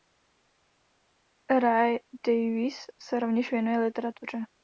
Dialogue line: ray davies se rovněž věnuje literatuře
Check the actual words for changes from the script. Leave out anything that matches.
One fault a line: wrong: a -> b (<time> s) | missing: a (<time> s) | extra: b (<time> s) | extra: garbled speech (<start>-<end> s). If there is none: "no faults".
no faults